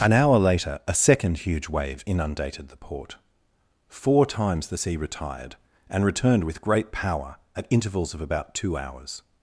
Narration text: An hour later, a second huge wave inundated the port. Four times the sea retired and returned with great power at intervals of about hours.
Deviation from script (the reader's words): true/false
true